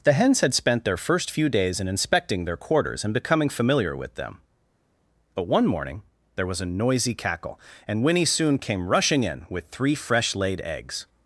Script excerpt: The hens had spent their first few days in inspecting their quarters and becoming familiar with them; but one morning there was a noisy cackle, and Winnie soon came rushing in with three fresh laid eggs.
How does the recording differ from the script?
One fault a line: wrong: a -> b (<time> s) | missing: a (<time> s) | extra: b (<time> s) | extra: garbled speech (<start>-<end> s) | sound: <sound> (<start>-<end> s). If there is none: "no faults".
no faults